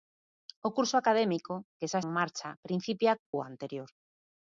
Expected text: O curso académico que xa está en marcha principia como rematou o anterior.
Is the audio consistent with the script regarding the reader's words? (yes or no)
no